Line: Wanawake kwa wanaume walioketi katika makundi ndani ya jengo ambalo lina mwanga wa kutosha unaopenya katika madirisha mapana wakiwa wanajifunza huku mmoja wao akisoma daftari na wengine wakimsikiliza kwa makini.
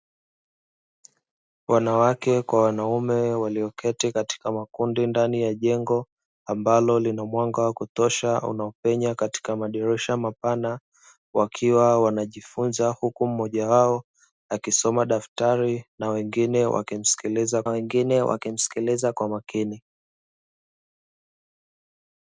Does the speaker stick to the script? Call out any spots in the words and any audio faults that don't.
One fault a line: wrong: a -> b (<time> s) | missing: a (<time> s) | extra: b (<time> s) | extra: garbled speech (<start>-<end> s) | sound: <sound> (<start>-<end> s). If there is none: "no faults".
extra: wengine wakimsikiliza (17.7 s)